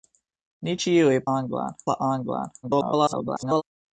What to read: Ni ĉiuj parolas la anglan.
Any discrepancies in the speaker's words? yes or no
yes